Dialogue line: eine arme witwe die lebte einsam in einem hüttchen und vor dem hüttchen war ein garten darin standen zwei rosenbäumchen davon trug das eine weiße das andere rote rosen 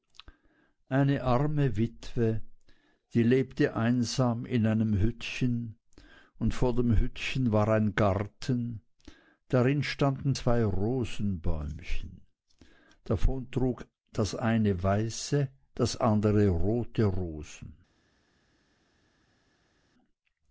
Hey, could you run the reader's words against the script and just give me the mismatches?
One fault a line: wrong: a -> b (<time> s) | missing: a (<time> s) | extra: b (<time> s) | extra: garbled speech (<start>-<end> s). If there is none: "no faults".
no faults